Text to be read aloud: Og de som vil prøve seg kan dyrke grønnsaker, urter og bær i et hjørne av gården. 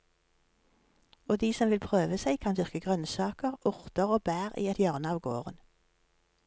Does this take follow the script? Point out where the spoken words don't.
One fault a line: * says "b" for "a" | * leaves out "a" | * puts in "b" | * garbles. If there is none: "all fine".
all fine